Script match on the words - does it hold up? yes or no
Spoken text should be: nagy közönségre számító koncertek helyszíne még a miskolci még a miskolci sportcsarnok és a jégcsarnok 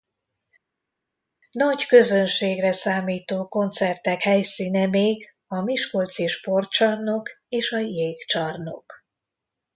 no